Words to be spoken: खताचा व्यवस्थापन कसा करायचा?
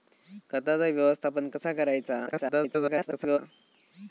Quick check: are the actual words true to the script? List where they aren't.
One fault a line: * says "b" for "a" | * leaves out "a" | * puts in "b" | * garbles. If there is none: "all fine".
* garbles